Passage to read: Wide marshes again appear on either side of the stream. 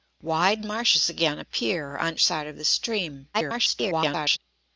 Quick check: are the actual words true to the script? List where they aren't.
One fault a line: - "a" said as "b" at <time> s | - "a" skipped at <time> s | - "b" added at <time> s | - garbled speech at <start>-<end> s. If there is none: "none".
- "either" skipped at 2.2 s
- garbled speech at 3.3-4.4 s